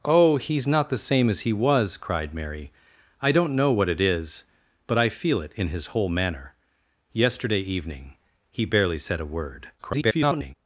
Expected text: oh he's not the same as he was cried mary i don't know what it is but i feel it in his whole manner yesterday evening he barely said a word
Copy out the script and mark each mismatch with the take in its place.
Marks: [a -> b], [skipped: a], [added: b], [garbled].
oh he's not the same as he was cried mary i don't know what it is but i feel it in his whole manner yesterday evening he barely said a word [garbled]